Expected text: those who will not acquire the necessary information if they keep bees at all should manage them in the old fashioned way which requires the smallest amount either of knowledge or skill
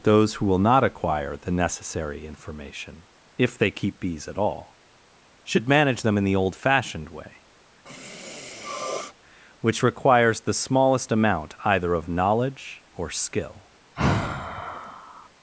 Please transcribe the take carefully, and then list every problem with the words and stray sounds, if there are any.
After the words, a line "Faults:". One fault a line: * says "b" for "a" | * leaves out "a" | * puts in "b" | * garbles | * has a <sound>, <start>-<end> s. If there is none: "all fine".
those who will not acquire the necessary information if they keep bees at all should manage them in the old fashioned way which requires the smallest amount either of knowledge or skill
Faults:
* has a sniff, 7.9-9.1 s
* has a sigh, 14.0-15.3 s